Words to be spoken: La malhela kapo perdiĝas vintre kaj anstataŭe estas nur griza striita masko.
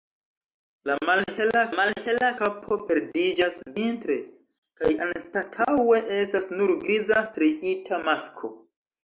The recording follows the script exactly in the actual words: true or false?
false